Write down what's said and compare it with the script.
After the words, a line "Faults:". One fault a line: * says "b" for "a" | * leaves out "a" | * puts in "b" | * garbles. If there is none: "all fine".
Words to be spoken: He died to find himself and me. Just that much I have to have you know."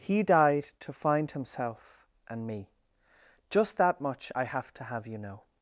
He died to find himself and me. Just that much I have to have you know."
Faults:
all fine